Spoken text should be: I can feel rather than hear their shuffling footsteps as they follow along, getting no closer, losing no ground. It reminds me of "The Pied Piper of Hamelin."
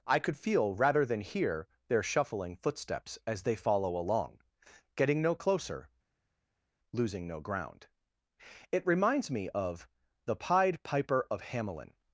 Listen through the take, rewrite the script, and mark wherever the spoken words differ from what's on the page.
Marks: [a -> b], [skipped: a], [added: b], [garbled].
I [can -> could] feel rather than hear their shuffling footsteps as they follow along, getting no closer, losing no ground. It reminds me of "The Pied Piper of Hamelin."